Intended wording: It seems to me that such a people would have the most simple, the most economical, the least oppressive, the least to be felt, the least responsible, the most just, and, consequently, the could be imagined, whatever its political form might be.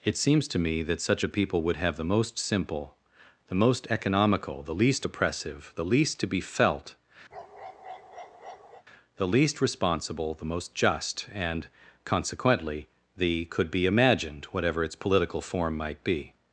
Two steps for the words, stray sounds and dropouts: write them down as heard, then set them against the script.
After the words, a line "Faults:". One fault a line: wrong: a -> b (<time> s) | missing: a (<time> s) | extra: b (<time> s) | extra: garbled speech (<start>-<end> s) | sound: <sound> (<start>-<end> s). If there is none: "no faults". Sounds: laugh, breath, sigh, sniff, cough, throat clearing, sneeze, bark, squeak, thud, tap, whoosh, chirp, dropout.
It seems to me that such a people would have the most simple, the most economical, the least oppressive, the least to be felt, the least responsible, the most just, and, consequently, the could be imagined, whatever its political form might be.
Faults:
sound: bark (7.3-8.8 s)